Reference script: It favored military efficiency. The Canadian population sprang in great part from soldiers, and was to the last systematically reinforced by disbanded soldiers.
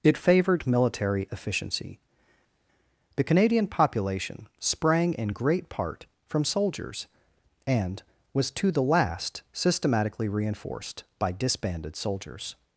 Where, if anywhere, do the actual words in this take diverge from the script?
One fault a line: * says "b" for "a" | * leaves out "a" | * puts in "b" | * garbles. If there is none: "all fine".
all fine